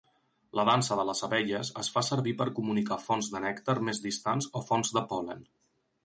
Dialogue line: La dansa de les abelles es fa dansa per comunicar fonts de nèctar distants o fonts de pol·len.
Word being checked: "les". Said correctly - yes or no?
yes